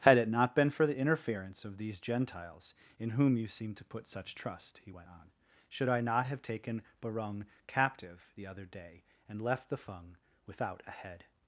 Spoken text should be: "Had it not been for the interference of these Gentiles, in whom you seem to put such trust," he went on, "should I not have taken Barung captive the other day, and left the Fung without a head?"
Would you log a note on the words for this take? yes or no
no